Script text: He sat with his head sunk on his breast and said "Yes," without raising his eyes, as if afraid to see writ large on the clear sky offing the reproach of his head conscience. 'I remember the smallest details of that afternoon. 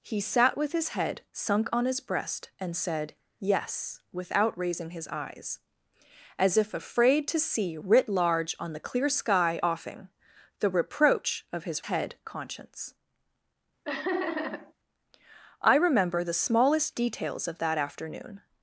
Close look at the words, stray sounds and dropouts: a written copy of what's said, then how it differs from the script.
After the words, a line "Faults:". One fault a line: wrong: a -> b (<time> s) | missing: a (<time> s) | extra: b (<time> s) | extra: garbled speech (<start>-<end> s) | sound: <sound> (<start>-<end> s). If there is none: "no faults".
He sat with his head sunk on his breast and said "Yes," without raising his eyes, as if afraid to see writ large on the clear sky offing the reproach of his head conscience. 'I remember the smallest details of that afternoon.
Faults:
sound: laugh (13.8-14.7 s)